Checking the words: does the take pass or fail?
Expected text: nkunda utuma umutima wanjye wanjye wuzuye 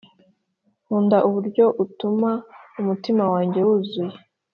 fail